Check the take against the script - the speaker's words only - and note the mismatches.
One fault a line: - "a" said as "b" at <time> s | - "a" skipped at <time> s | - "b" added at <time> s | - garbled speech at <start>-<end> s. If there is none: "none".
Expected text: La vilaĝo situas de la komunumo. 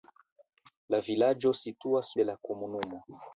none